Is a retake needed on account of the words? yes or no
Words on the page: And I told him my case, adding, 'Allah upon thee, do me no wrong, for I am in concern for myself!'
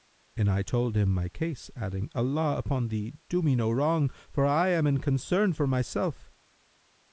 no